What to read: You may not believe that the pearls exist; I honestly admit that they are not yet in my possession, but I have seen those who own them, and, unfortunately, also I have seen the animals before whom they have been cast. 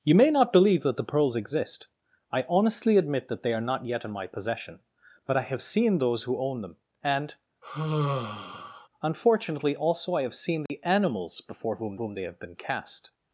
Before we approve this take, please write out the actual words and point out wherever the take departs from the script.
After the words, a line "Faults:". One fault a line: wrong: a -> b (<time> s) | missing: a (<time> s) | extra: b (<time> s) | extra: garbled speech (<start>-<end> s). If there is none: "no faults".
You may not believe that the pearls exist; I honestly admit that they are not yet in my possession, but I have seen those who own them, and, unfortunately, also I have seen the animals before whom whom they have been cast.
Faults:
extra: whom (12.0 s)